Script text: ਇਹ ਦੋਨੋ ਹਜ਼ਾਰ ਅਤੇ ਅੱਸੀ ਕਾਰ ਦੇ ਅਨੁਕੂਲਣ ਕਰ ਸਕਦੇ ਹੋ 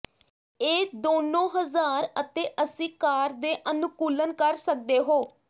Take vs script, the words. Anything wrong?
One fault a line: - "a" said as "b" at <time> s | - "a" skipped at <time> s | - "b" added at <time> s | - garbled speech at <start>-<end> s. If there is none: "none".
none